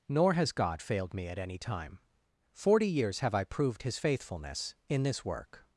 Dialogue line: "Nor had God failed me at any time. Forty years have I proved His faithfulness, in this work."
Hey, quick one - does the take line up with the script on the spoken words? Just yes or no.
no